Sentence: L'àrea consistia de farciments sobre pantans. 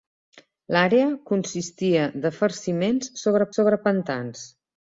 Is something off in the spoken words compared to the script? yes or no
yes